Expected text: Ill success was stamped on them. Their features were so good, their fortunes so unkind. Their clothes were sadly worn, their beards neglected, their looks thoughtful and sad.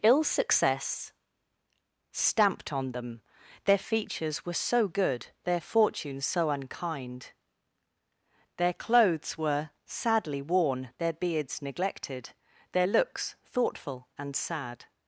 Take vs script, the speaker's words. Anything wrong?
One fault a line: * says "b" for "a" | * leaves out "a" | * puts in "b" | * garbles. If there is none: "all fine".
* leaves out "was"